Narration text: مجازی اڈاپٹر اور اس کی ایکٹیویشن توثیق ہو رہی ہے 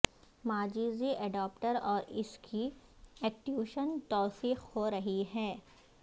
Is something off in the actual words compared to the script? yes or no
no